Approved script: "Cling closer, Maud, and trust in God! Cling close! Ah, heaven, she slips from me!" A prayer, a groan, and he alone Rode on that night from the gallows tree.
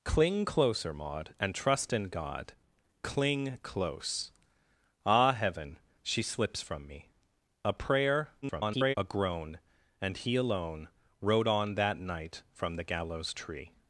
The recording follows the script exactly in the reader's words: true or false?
false